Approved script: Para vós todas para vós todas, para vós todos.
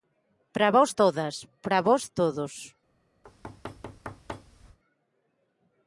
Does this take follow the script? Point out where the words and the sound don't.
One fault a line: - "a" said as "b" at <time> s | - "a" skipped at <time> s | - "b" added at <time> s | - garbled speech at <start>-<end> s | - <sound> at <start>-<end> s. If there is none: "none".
- "todas para vós" skipped at 2.1 s
- thud at 3.2-4.8 s